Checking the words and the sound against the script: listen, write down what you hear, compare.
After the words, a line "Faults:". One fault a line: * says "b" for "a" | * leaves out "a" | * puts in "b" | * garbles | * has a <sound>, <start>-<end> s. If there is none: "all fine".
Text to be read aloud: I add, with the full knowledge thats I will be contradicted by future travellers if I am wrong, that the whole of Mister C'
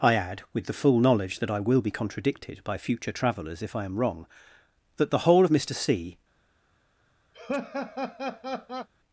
I add, with the full knowledge that I will be contradicted by future travellers if I am wrong, that the whole of Mister C'
Faults:
* says "that" for "thats"
* has a laugh, 7.3-8.9 s